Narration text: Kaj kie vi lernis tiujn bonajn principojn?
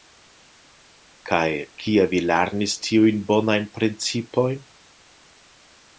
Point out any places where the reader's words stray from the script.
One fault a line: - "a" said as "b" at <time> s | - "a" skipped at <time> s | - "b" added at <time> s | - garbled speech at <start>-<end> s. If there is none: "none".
none